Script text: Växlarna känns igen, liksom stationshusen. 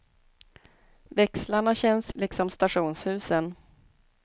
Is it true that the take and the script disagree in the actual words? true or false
true